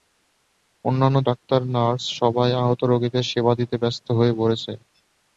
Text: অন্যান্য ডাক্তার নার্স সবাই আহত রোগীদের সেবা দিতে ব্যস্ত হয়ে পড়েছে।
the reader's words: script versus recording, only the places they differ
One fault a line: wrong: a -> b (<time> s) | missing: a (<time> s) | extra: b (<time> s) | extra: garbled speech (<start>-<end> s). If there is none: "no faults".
no faults